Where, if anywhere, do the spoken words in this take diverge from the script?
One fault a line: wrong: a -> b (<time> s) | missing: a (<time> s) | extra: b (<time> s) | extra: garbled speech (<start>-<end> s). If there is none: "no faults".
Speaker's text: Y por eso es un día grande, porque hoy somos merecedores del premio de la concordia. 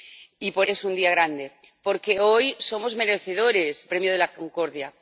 missing: eso (0.7 s)
missing: del (3.9 s)